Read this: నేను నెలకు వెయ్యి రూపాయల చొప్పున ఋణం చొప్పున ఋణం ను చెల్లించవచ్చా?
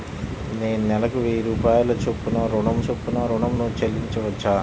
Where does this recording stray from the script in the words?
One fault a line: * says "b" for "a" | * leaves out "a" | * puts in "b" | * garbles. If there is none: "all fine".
all fine